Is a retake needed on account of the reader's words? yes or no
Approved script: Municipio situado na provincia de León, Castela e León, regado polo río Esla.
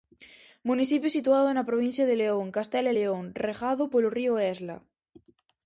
no